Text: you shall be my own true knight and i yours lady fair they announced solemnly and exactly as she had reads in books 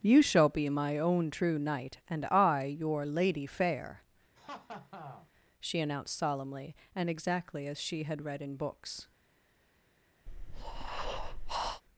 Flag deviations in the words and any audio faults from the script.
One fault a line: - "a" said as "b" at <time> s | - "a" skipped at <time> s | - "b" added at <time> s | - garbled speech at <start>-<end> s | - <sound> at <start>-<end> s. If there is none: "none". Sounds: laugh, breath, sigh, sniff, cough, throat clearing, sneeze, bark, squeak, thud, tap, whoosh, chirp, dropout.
- "yours" said as "your" at 2.8 s
- laugh at 4.3-5.3 s
- "they" said as "she" at 5.6 s
- "reads" said as "read" at 8.2 s
- breath at 10.3-11.8 s